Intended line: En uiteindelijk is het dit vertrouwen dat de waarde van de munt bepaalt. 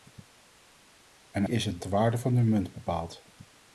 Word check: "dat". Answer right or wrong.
wrong